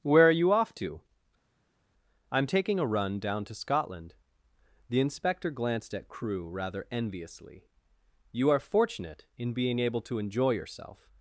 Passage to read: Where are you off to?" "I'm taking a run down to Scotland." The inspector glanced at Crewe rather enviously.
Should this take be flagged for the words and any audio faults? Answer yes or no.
yes